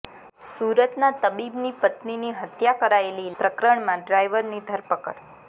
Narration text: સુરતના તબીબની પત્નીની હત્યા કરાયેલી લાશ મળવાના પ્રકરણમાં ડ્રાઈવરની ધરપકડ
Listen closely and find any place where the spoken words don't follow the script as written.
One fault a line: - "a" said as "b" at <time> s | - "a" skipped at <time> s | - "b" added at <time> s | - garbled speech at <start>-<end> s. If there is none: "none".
- "લાશ મળવાના" skipped at 3.4 s